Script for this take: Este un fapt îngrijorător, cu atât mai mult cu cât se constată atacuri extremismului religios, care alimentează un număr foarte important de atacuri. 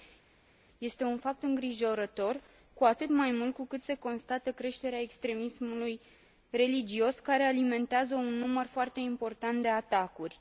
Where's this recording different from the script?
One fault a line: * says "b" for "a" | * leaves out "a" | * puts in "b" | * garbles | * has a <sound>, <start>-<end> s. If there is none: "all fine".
* says "creșterea" for "atacuri"